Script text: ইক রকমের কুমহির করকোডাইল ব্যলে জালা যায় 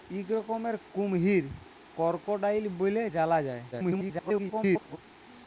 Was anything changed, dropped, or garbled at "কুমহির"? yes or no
no